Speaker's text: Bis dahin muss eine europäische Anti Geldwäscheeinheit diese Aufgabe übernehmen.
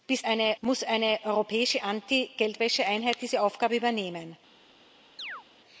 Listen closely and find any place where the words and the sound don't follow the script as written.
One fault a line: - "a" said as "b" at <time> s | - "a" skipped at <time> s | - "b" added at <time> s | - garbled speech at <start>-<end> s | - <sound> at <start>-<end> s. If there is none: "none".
- "dahin" said as "eine" at 0.2 s
- chirp at 5.2-5.4 s